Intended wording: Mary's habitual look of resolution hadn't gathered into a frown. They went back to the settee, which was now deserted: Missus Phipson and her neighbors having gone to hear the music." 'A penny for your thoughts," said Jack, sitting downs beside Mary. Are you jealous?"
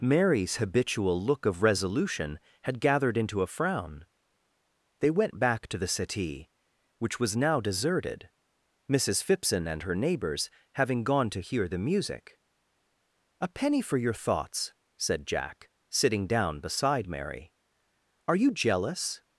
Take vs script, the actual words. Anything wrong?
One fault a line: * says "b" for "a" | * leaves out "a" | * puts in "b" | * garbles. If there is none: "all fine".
* says "had" for "hadn't"
* says "down" for "downs"